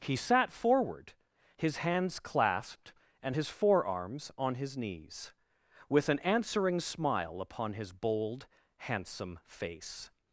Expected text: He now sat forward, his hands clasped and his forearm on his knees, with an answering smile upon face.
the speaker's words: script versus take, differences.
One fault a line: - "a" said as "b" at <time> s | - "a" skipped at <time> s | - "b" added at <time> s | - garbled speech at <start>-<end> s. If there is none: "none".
- "now" skipped at 0.1 s
- "forearm" said as "forearms" at 3.5 s
- "his bold handsome" added at 7.7 s